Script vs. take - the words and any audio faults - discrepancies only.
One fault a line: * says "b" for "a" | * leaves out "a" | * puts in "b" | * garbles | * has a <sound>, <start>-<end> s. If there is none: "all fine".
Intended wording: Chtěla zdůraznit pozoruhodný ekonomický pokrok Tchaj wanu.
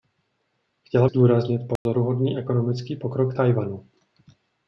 * has a dropout, 1.8-1.9 s